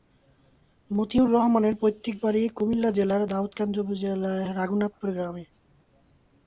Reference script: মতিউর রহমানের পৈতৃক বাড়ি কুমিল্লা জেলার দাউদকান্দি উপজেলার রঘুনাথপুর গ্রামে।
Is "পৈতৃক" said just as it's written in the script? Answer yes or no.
yes